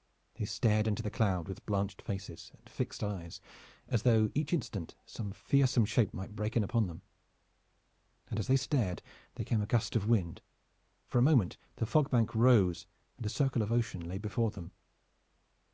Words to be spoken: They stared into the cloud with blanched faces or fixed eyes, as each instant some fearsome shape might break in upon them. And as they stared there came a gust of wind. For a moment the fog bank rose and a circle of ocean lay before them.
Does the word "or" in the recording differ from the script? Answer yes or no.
yes